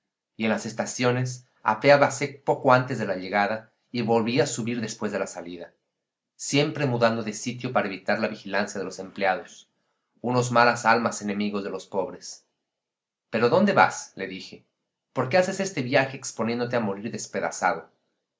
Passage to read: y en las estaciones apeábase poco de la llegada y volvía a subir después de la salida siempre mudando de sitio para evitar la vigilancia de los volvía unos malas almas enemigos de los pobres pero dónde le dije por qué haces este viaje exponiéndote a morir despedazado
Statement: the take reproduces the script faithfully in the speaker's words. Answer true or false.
false